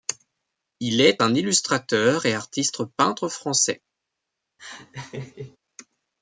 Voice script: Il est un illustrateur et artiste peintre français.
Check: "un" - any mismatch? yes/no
no